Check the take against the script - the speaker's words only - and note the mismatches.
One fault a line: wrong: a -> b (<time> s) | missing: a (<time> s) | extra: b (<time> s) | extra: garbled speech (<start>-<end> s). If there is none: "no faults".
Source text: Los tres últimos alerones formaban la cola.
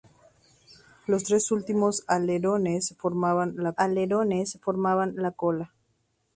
extra: alerones formaban la (3.8 s)